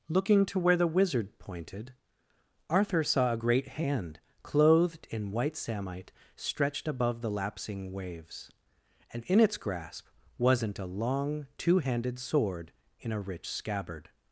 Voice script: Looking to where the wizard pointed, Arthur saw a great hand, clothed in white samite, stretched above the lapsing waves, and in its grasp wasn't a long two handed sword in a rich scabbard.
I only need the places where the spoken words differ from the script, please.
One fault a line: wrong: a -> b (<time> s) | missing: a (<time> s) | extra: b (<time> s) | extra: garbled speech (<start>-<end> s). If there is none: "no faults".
no faults